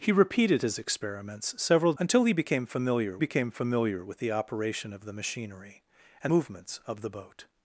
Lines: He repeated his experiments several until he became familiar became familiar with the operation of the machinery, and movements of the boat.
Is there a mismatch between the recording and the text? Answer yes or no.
no